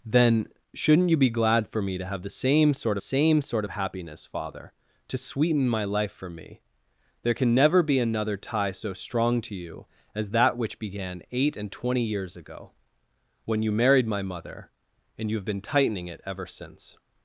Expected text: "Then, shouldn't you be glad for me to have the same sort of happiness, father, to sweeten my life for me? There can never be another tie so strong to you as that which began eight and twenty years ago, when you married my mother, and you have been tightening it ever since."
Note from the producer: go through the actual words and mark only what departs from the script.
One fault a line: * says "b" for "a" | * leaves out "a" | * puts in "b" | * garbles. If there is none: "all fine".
* puts in "same sort"